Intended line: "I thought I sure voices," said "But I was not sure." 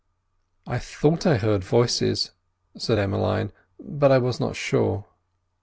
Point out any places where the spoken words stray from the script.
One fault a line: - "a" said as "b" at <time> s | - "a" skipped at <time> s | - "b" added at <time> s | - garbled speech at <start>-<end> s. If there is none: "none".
- "sure" said as "heard" at 1.4 s
- "Emmeline" added at 3.0 s